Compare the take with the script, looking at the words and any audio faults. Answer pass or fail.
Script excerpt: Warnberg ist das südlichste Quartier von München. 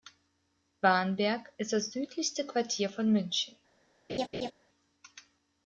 fail